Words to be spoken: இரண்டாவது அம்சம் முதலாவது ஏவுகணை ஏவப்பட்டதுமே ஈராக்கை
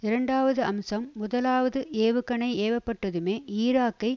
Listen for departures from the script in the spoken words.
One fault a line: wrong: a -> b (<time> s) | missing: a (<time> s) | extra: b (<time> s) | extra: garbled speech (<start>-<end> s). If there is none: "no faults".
no faults